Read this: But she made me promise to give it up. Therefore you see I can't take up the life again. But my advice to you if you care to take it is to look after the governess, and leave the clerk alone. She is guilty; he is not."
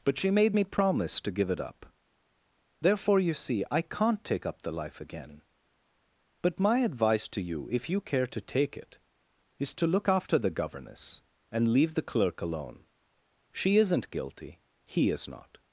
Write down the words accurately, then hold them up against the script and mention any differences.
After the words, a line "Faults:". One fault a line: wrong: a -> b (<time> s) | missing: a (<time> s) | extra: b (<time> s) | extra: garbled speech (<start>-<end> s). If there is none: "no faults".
But she made me promise to give it up. Therefore you see I can't take up the life again. But my advice to you if you care to take it is to look after the governess, and leave the clerk alone. She isn't guilty; he is not."
Faults:
wrong: is -> isn't (13.8 s)